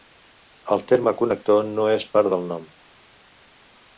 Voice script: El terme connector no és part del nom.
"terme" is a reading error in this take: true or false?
false